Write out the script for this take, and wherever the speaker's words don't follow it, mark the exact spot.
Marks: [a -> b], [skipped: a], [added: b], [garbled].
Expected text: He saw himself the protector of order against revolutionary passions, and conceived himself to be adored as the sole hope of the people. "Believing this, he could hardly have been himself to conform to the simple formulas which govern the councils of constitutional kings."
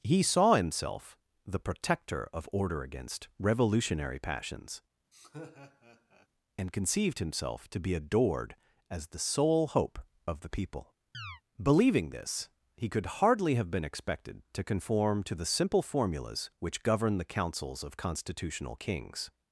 He saw himself the protector of order against revolutionary passions, and conceived himself to be adored as the sole hope of the people. "Believing this, he could hardly have been [himself -> expected] to conform to the simple formulas which govern the councils of constitutional kings."